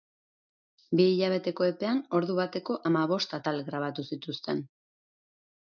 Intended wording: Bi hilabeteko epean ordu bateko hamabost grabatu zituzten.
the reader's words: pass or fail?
fail